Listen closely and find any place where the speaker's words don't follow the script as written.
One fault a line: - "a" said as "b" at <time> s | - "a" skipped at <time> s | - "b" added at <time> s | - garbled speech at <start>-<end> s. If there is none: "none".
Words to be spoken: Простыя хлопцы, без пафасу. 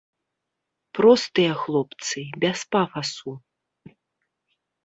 none